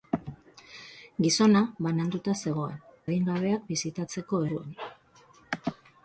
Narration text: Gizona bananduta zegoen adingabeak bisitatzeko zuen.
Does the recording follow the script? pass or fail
pass